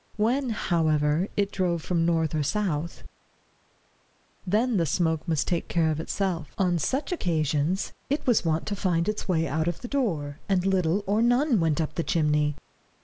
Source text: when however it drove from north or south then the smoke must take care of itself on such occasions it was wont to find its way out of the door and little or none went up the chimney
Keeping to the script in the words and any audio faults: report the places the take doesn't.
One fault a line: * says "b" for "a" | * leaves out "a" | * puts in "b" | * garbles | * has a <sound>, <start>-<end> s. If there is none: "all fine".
all fine